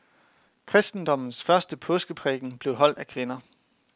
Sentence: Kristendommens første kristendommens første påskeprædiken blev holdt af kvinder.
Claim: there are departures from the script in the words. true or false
true